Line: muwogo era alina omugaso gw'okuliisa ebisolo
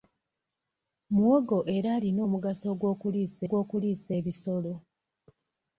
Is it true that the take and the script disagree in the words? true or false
true